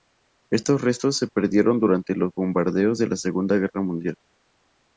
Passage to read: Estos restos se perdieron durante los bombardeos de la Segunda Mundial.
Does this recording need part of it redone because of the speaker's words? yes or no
yes